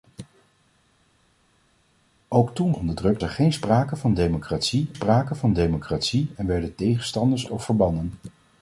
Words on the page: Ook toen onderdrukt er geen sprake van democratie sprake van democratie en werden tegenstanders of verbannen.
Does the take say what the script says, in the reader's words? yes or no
yes